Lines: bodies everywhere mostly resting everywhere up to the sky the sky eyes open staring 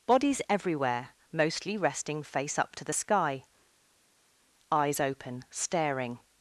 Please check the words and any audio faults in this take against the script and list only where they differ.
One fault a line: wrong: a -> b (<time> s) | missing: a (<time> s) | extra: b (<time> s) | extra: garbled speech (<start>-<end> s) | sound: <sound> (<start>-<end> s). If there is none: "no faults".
wrong: everywhere -> face (2.2 s)
missing: the sky (3.4 s)